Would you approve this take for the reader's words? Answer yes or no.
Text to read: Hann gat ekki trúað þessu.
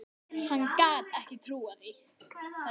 yes